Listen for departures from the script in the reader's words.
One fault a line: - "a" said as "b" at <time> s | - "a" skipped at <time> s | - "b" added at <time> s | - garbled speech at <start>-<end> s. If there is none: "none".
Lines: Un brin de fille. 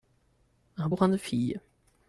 none